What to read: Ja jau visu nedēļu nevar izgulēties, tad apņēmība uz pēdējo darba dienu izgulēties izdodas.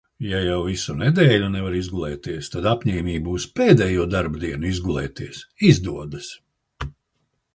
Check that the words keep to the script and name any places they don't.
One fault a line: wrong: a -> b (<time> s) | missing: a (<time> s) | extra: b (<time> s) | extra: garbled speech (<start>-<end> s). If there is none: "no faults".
no faults